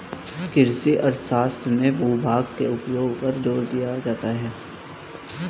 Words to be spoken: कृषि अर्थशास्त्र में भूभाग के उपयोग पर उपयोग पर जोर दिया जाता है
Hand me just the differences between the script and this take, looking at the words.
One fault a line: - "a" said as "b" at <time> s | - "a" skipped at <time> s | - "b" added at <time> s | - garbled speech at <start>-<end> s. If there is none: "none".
- "उपयोग पर" skipped at 3.4 s